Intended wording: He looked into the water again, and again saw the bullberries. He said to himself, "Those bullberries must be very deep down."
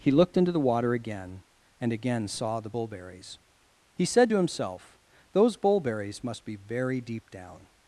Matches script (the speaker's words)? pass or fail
pass